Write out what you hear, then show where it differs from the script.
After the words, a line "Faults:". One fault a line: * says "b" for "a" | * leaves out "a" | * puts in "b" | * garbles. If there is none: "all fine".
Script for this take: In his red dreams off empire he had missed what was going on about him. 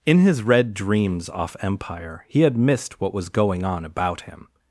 In his red dreams off empire he had missed what was going on about him.
Faults:
all fine